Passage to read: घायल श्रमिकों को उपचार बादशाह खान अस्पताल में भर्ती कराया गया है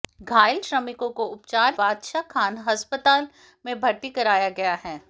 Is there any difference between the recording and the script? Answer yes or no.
no